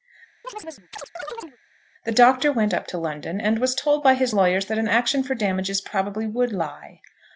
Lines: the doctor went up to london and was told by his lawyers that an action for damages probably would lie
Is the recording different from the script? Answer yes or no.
no